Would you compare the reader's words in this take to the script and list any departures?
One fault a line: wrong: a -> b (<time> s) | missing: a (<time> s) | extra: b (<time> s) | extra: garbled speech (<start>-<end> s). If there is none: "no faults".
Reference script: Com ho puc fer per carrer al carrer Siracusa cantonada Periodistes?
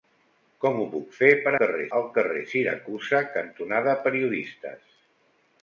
no faults